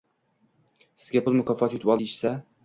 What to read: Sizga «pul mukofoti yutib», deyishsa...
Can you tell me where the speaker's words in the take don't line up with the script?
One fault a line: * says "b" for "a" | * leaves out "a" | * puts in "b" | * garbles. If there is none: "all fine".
all fine